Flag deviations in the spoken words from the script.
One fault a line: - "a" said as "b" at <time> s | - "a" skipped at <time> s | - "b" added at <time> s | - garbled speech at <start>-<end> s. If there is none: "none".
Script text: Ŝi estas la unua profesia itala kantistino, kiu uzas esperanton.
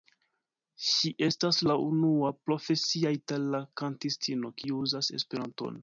none